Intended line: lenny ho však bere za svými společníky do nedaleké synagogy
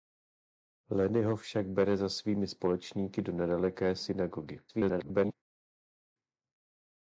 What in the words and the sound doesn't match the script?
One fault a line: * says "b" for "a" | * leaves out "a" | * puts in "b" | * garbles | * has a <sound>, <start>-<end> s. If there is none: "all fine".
* garbles